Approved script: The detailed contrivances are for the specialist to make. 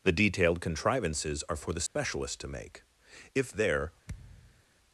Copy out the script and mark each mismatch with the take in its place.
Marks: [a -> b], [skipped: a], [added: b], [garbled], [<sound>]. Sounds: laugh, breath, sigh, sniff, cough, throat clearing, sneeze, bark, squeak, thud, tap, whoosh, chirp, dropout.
The detailed contrivances are for the specialist [dropout] to make. [added: If there] [thud]